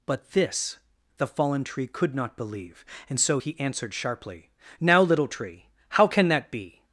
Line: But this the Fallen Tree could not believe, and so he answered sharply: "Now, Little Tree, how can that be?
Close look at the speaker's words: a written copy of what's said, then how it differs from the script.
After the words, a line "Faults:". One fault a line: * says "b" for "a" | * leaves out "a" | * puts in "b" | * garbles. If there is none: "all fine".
But this the Fallen Tree could not believe, and so he answered sharply: "Now, Little Tree, how can that be?
Faults:
all fine